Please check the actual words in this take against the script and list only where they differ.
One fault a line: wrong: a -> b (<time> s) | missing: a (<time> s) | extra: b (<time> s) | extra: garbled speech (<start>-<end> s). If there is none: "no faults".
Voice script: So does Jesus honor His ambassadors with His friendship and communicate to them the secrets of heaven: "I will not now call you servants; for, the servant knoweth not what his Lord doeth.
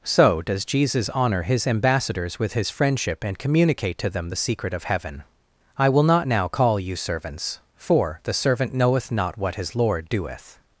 wrong: secrets -> secret (4.4 s)